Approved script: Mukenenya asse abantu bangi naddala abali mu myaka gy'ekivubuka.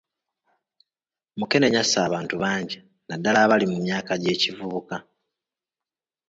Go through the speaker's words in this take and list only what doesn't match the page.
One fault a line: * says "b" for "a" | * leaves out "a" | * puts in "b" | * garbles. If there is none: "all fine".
all fine